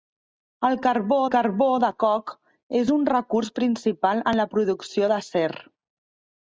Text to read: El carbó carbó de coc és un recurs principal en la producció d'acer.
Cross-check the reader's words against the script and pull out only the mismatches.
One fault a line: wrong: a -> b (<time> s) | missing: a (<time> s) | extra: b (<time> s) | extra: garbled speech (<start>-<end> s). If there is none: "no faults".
no faults